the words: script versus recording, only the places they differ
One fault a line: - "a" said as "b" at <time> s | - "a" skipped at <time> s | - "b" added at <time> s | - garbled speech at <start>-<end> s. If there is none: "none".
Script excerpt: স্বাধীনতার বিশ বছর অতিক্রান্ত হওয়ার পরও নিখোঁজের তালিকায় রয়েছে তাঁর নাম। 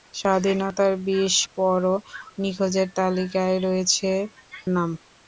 - "বছর অতিক্রান্ত হওয়ার" skipped at 1.4 s
- "তাঁর" skipped at 4.1 s